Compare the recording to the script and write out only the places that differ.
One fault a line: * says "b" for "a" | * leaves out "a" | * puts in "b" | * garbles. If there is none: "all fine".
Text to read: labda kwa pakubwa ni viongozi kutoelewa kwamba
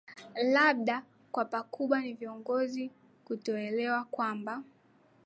all fine